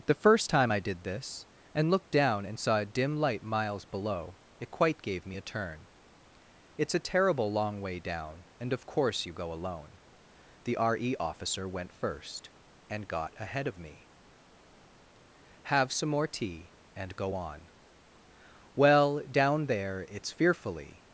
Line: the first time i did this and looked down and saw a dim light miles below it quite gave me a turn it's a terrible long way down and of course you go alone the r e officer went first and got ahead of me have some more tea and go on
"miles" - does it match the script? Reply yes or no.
yes